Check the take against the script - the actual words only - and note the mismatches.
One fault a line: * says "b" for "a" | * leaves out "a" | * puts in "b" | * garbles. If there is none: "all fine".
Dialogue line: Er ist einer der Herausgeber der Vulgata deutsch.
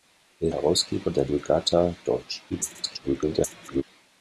* leaves out "ist einer der"
* garbles